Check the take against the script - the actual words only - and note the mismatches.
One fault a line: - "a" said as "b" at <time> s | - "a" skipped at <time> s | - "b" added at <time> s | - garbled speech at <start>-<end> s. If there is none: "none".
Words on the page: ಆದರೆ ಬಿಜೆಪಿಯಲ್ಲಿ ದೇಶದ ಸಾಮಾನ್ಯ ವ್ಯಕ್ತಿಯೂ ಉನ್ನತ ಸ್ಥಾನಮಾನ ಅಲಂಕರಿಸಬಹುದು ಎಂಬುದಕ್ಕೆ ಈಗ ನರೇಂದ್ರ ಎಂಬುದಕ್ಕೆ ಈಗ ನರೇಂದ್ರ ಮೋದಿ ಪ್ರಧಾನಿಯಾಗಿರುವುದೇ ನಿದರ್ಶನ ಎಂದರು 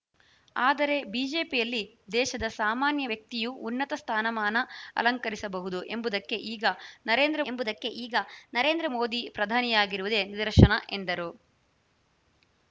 none